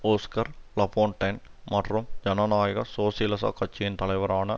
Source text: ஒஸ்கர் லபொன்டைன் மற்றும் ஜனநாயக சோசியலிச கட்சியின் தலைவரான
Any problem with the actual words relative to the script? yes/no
no